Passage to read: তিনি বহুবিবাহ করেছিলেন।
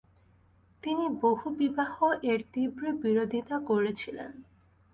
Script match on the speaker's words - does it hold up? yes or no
no